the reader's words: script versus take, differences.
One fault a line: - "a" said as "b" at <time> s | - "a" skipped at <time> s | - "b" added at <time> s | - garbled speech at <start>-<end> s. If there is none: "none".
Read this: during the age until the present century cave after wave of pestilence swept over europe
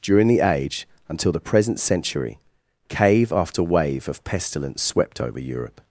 none